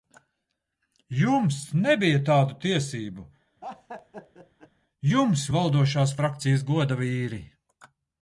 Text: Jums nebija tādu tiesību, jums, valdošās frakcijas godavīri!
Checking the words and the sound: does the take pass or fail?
fail